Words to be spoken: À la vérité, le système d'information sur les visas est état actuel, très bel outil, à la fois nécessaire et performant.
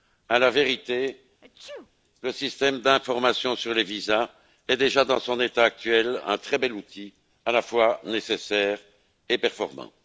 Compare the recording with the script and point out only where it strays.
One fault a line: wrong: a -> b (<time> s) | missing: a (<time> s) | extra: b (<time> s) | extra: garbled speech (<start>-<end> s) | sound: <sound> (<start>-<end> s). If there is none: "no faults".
sound: sneeze (1.4-1.9 s)
extra: déjà dans son (4.8 s)
extra: un (6.3 s)